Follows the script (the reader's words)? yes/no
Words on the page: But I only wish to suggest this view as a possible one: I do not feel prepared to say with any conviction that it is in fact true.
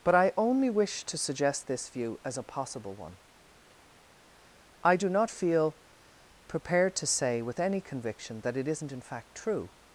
no